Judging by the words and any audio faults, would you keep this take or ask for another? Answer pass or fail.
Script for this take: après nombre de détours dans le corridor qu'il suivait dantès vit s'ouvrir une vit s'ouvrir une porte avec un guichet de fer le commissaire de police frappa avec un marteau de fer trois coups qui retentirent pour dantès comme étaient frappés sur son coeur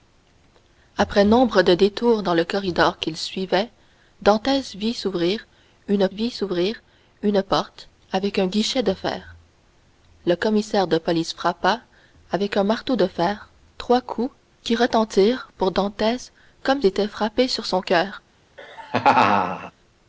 fail